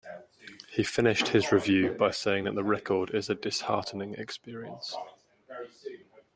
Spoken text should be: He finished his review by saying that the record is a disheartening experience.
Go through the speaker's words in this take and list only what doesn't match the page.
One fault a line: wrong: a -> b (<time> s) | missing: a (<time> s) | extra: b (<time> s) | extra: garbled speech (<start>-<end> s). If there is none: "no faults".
no faults